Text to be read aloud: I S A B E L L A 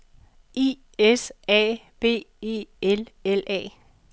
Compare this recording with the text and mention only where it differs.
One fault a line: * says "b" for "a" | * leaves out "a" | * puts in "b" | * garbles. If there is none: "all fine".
all fine